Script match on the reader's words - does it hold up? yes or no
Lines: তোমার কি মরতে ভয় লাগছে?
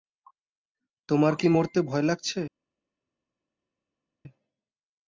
yes